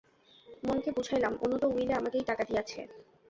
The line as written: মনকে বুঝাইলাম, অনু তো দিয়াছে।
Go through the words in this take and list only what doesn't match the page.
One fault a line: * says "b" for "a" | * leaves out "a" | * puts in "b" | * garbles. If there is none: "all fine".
* puts in "উইলে আমাকেই টাকা"